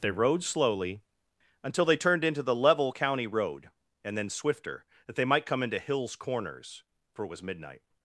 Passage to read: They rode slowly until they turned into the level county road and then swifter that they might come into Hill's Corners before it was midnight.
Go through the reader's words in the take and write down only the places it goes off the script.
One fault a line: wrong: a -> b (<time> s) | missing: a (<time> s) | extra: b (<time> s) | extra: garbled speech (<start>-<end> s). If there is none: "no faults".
wrong: before -> for (7.1 s)